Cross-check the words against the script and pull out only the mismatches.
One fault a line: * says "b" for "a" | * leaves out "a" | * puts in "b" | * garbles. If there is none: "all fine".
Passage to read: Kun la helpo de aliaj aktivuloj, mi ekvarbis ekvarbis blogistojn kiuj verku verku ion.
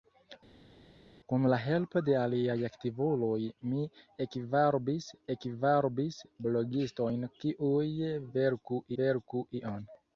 all fine